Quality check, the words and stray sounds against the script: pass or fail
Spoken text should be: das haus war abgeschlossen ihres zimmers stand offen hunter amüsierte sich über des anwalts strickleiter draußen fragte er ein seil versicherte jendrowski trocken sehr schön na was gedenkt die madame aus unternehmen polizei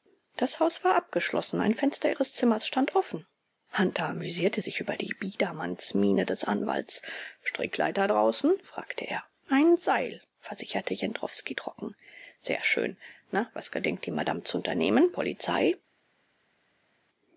fail